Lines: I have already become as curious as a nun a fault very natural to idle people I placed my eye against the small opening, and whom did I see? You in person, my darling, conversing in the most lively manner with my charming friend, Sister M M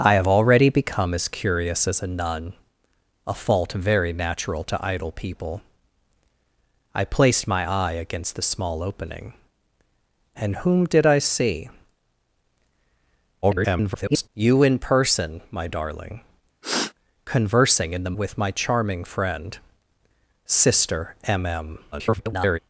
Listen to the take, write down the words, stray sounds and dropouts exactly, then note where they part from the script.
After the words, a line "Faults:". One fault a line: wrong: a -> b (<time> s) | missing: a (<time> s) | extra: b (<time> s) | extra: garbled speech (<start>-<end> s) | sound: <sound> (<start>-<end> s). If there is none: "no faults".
I have already become as curious as a nun a fault very natural to idle people I placed my eye against the small opening, and whom did I see? [garbled] You in person, my darling, conversing in the with my charming friend, Sister M M [garbled]
Faults:
extra: garbled speech (13.4-14.3 s)
sound: sniff (16.6-16.9 s)
missing: most lively manner (18.2 s)
extra: garbled speech (21.9-22.6 s)